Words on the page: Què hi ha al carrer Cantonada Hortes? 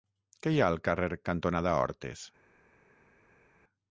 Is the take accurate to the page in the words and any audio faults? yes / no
yes